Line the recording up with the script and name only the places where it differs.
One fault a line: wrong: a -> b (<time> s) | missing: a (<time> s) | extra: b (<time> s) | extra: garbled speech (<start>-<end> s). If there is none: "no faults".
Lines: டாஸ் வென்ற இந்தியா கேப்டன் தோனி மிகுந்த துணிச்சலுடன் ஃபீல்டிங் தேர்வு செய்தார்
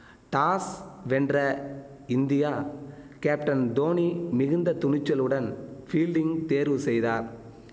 no faults